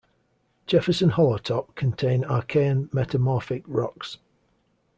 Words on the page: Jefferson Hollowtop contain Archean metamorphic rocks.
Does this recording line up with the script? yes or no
yes